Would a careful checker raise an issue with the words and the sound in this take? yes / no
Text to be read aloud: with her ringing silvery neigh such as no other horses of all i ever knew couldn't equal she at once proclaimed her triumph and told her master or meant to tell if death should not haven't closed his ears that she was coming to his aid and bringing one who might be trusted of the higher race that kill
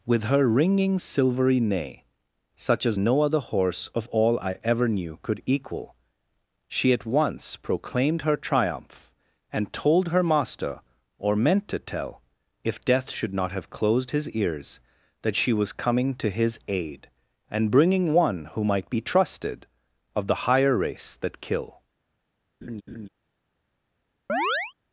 yes